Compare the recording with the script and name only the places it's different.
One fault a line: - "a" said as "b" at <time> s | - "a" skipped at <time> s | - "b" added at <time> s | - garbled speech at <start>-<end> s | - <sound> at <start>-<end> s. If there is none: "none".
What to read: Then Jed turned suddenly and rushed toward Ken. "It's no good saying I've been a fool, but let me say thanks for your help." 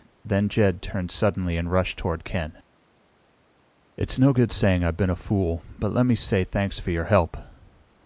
none